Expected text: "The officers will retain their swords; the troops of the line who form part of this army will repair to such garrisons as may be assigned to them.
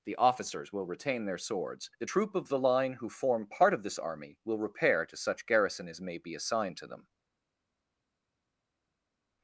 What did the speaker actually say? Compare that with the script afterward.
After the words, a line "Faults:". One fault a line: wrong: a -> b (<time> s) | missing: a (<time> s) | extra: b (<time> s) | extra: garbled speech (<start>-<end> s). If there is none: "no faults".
"The officers will retain their swords; the troop of the line who form part of this army will repair to such garrison as may be assigned to them.
Faults:
wrong: troops -> troop (2.0 s)
wrong: garrisons -> garrison (5.4 s)